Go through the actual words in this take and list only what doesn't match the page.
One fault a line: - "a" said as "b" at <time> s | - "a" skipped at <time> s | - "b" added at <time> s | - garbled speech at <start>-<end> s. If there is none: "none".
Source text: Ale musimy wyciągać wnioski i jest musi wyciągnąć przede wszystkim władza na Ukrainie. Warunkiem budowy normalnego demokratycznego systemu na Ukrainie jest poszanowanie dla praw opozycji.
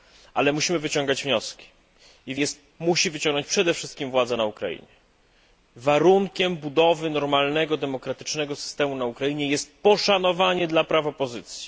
none